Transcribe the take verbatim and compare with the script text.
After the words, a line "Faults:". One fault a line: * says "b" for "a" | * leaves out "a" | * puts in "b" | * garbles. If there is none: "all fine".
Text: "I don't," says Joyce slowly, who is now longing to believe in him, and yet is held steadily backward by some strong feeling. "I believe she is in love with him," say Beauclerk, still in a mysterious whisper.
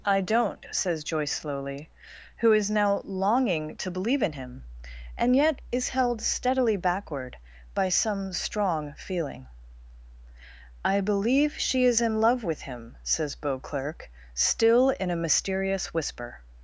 "I don't," says Joyce slowly, who is now longing to believe in him, and yet is held steadily backward by some strong feeling. "I believe she is in love with him," says Beauclerk, still in a mysterious whisper.
Faults:
* says "says" for "say"